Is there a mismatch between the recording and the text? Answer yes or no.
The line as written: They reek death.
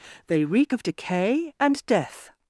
yes